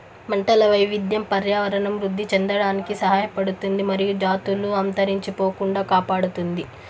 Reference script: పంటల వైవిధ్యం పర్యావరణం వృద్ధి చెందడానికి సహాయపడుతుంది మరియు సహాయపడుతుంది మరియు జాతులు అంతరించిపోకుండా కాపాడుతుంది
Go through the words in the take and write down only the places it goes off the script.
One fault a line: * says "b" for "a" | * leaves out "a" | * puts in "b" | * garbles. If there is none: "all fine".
* leaves out "సహాయపడుతుంది మరియు"